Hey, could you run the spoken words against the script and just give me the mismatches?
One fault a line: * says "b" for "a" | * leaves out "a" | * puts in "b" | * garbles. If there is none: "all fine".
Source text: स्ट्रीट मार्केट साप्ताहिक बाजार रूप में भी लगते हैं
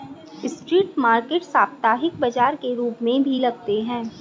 * puts in "के"